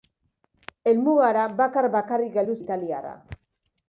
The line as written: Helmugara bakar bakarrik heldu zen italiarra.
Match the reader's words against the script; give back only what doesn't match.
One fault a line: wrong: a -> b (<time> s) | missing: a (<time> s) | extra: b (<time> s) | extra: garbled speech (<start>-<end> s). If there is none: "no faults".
missing: zen (2.6 s)